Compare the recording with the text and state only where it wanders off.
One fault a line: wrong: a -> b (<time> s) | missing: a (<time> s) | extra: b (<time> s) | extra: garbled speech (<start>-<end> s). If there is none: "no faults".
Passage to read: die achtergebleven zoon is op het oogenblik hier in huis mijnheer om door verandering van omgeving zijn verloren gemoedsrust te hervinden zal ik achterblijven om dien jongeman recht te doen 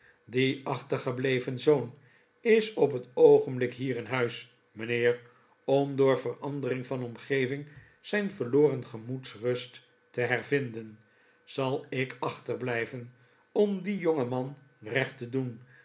no faults